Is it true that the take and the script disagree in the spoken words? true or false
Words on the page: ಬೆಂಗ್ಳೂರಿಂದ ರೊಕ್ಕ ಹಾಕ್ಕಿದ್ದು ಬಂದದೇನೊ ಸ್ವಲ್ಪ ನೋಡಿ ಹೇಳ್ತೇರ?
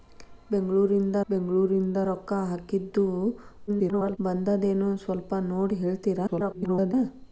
true